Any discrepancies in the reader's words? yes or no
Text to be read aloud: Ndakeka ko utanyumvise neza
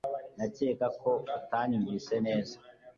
no